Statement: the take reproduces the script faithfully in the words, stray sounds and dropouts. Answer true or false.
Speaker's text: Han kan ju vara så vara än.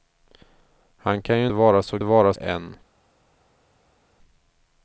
true